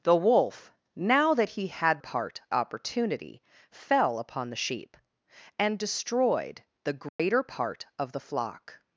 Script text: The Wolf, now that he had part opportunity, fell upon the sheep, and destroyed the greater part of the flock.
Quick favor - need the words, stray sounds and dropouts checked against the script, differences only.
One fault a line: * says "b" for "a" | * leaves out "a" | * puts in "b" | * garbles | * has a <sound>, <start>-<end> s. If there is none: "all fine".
* has a dropout, 7.1-7.2 s